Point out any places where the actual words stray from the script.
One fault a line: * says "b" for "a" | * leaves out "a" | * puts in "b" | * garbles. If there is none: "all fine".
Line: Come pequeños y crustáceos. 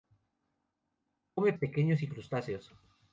all fine